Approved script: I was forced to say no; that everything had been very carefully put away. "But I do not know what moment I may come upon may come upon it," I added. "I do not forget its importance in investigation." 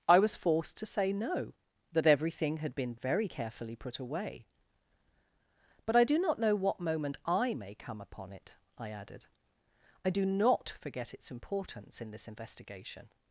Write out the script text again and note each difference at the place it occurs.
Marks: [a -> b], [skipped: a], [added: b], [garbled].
I was forced to say no; that everything had been very carefully put away. "But I do not know what moment I may come upon [skipped: may come upon] it," I added. "I do not forget its importance in [added: this] investigation."